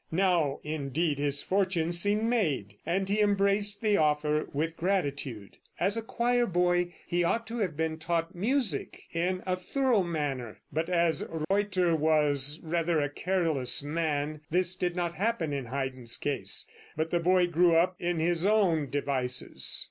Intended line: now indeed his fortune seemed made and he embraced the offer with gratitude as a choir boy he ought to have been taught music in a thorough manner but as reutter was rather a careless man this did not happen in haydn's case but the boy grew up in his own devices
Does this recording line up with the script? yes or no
yes